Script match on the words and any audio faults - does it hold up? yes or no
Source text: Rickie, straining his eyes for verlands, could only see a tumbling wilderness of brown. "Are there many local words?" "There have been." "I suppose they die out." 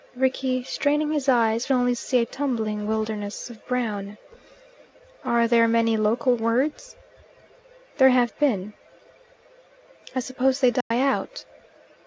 no